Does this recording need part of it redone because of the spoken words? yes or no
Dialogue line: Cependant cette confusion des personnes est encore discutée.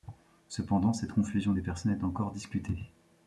no